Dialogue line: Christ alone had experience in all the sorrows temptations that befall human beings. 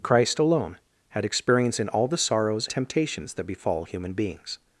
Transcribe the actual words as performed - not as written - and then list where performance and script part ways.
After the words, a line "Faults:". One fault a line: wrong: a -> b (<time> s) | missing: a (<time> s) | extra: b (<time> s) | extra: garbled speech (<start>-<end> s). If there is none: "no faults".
Christ alone had experience in all the sorrows temptations that befall human beings.
Faults:
no faults